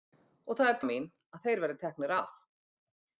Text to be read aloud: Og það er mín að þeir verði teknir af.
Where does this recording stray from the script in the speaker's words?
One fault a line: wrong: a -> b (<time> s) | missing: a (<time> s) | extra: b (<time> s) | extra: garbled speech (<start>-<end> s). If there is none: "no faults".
no faults